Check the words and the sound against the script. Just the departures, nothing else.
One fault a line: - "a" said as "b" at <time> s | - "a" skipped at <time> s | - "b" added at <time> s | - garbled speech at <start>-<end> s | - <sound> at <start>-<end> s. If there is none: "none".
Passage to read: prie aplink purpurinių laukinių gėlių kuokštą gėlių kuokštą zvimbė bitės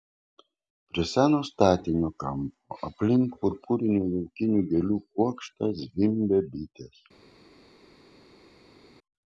- "seno statinio kampo" added at 1.1 s
- "gėlių kuokštą" skipped at 5.7 s